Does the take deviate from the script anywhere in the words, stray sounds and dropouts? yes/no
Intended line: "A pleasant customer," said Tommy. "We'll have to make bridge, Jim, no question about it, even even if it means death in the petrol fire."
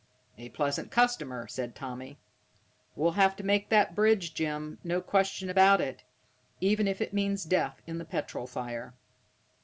yes